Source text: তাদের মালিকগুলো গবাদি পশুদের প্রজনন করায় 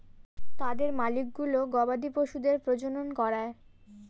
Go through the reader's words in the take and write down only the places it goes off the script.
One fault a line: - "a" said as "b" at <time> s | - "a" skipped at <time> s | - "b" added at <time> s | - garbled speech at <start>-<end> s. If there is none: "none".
none